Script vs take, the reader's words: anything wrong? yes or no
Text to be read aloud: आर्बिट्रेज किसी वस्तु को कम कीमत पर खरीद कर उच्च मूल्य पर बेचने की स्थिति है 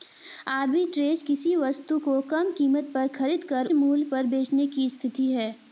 yes